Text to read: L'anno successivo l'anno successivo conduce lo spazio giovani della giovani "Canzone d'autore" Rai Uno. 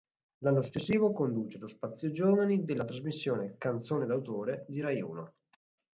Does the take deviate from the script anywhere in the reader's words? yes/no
yes